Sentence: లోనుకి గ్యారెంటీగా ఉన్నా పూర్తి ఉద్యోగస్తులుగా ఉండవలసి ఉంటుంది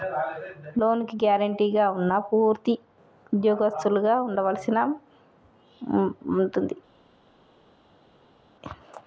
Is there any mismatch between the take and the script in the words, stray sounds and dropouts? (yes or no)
no